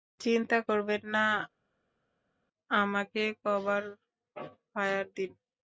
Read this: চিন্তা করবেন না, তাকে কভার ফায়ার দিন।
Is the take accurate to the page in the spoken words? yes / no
no